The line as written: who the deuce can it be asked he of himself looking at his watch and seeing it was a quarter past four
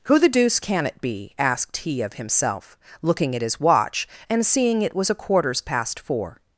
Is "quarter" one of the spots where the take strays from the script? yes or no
yes